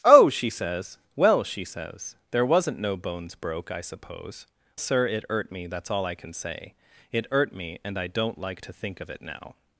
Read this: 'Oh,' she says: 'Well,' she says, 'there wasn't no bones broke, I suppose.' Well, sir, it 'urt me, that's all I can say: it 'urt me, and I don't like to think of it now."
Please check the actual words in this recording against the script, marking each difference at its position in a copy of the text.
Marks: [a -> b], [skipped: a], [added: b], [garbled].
'Oh,' she says: 'Well,' she says, 'there wasn't no bones broke, I suppose.' [skipped: Well,] sir, it 'urt me, that's all I can say: it 'urt me, and I don't like to think of it now."